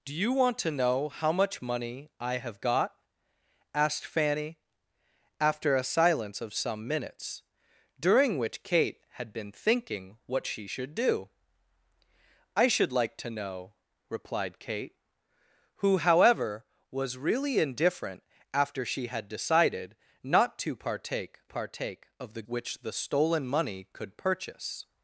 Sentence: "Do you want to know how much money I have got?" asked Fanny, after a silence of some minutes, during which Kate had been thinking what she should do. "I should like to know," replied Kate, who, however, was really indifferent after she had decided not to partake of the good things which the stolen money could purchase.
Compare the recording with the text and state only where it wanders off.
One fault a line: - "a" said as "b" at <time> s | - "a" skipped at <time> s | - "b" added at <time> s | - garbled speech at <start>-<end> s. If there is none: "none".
- "partake" added at 21.4 s
- "good things" skipped at 22.4 s